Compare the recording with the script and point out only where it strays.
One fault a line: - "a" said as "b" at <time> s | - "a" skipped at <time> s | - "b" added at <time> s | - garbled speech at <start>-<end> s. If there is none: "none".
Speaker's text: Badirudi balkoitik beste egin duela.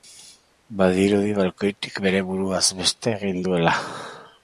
- "bere buruaz" added at 2.1 s